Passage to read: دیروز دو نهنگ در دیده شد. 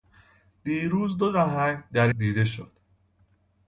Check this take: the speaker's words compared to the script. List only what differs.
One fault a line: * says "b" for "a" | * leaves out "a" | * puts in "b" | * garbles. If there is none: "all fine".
all fine